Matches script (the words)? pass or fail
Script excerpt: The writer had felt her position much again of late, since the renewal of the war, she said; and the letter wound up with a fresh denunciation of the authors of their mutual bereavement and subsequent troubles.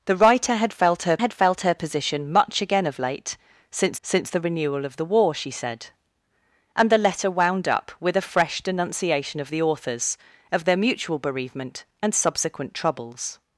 fail